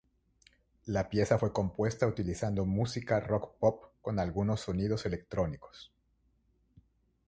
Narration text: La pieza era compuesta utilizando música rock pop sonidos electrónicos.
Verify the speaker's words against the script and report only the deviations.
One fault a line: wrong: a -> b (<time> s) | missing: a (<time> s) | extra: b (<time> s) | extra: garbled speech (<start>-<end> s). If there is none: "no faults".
wrong: era -> fue (1.3 s)
extra: con algunos (4.0 s)